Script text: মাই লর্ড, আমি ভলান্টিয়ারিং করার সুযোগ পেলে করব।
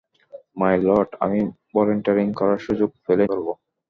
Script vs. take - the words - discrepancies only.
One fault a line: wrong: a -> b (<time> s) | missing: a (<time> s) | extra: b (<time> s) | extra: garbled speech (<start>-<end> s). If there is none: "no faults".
no faults